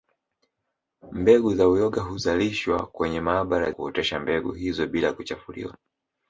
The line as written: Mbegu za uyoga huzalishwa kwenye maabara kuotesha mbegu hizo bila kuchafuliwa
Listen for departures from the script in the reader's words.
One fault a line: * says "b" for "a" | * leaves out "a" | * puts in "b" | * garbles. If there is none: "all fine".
all fine